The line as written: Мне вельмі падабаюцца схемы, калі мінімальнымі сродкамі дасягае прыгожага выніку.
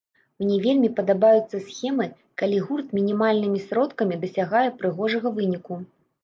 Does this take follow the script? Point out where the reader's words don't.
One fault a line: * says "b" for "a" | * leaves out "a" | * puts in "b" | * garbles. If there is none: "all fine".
* puts in "гурт"